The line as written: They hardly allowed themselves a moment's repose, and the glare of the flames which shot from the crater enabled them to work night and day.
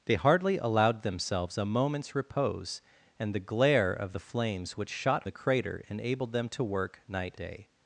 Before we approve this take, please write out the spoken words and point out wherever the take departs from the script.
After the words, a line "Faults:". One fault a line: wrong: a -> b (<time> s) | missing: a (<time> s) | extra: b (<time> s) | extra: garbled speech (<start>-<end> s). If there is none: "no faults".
They hardly allowed themselves a moment's repose, and the glare of the flames which shot the crater enabled them to work night day.
Faults:
missing: from (5.3 s)
missing: and (7.4 s)